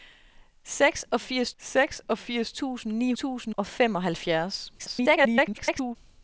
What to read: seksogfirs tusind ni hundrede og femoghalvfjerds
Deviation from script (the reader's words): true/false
true